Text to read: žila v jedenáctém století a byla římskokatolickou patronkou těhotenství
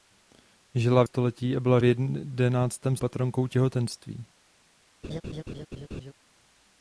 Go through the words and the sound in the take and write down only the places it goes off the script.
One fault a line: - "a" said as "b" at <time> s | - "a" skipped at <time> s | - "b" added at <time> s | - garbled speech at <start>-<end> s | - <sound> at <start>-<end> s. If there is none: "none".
- "jedenáctém" skipped at 1.1 s
- "římskokatolickou" said as "jedenáctém" at 1.8 s
- laugh at 5.0-6.1 s